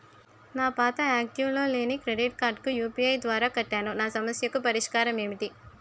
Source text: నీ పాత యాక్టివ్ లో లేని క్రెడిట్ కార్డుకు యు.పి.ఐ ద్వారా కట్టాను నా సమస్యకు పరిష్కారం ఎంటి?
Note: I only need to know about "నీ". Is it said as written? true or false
false